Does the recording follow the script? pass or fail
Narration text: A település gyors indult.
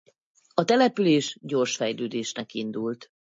fail